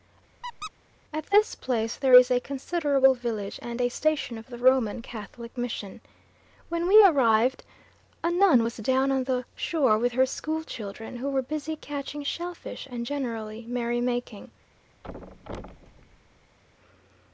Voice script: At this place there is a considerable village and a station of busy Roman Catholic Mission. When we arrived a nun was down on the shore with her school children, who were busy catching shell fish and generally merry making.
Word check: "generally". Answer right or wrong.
right